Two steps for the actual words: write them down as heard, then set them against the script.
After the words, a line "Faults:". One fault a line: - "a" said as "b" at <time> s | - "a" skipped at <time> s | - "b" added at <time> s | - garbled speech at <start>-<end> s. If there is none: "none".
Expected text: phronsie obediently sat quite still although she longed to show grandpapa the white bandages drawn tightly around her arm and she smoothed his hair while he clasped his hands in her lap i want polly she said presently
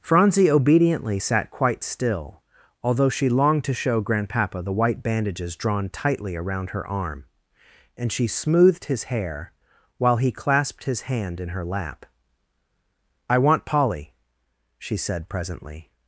phronsie obediently sat quite still although she longed to show grandpapa the white bandages drawn tightly around her arm and she smoothed his hair while he clasped his hand in her lap i want polly she said presently
Faults:
- "hands" said as "hand" at 11.0 s